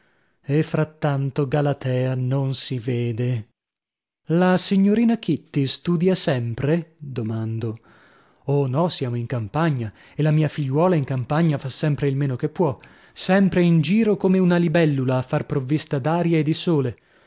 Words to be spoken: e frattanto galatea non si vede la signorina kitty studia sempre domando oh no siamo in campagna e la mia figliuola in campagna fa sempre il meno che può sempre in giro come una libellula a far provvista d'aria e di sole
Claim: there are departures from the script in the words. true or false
false